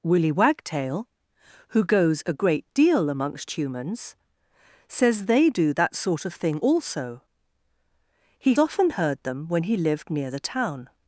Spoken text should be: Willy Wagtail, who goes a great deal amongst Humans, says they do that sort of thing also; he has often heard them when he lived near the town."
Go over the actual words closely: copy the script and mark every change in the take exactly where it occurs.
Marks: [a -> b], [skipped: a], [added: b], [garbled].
Willy Wagtail, who goes a great deal amongst Humans, says they do that sort of thing also; he [skipped: has] often heard them when he lived near the town."